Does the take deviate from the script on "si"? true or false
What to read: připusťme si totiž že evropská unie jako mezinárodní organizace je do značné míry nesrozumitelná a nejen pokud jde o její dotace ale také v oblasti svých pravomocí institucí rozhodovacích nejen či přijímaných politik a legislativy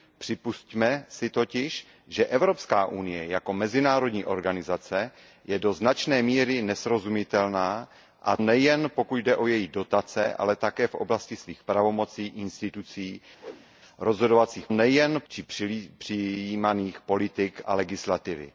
false